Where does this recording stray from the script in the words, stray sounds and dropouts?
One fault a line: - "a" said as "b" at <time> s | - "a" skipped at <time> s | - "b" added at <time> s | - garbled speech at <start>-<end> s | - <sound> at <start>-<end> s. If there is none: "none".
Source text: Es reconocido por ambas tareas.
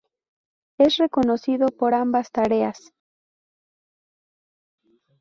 none